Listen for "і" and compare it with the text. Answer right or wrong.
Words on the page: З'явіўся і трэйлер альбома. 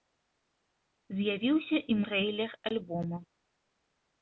right